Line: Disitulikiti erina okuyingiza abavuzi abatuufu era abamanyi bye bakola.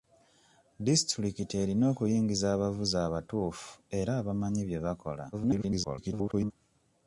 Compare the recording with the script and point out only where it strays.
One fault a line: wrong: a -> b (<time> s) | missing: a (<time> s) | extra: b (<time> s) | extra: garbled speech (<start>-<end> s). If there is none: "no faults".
extra: garbled speech (5.3-6.5 s)